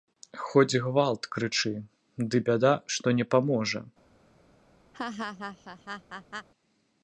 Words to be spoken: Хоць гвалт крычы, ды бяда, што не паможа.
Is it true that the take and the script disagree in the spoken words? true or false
false